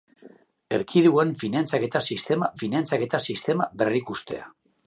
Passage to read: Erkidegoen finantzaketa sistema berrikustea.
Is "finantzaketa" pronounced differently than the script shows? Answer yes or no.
no